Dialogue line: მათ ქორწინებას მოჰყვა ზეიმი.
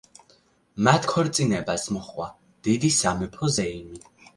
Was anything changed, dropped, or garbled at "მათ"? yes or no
no